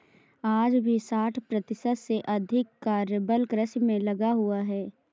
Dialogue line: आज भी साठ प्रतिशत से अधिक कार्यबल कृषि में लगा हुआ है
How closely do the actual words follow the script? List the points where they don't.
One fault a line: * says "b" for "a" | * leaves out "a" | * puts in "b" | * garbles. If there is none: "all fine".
all fine